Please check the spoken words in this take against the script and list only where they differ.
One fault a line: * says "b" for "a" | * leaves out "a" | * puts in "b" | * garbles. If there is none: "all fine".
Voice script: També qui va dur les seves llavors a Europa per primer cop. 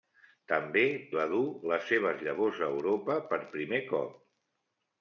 * leaves out "qui"